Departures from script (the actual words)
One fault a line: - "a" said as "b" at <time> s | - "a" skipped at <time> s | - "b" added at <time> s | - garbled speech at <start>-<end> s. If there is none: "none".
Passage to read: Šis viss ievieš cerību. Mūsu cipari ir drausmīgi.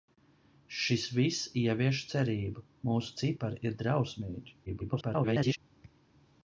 - garbled speech at 4.7-5.6 s